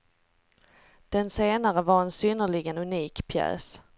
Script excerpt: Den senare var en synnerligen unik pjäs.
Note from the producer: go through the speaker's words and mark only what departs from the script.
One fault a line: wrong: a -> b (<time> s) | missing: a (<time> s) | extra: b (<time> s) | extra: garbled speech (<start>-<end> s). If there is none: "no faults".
no faults